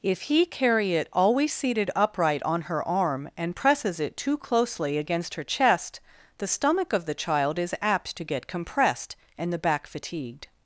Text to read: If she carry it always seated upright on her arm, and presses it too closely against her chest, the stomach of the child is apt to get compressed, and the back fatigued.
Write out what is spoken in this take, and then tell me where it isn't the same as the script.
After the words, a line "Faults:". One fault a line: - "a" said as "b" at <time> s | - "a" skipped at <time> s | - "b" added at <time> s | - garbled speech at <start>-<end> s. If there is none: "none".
If he carry it always seated upright on her arm, and presses it too closely against her chest, the stomach of the child is apt to get compressed, and the back fatigued.
Faults:
- "she" said as "he" at 0.2 s